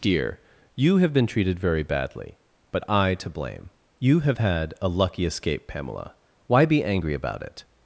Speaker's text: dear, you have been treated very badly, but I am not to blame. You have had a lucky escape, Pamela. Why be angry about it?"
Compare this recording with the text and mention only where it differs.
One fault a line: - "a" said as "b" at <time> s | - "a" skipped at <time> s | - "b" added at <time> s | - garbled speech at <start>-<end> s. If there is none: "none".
- "am not" skipped at 3.1 s